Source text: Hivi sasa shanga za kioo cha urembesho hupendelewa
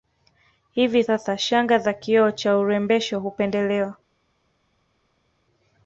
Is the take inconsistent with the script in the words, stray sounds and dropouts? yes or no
no